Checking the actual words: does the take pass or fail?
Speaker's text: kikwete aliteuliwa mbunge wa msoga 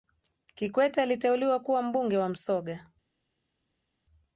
fail